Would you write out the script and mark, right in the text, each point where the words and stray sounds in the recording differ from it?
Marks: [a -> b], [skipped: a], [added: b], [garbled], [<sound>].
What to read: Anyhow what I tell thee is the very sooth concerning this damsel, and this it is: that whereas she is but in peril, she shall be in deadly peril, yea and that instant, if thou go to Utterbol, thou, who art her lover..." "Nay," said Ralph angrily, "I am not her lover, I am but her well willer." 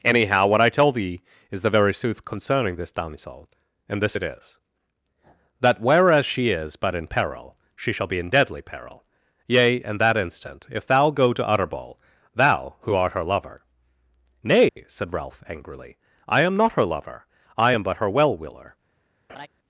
Anyhow what I tell thee is the very sooth concerning this damsel, and this it is: that whereas she is but in peril, she shall be in deadly peril, yea and that instant, if thou go to Utterbol, thou, who art her lover..." "Nay," [dropout] said Ralph angrily, "I am not her lover, I am but her well willer." [laugh]